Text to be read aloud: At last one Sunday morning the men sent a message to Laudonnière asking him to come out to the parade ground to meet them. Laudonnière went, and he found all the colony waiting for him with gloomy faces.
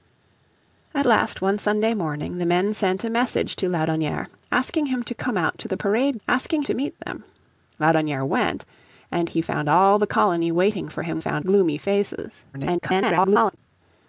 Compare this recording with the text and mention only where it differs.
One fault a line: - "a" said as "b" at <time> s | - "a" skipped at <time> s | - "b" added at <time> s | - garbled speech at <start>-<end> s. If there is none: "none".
- "ground" said as "asking" at 6.3 s
- "with" said as "found" at 11.2 s
- garbled speech at 12.5-13.6 s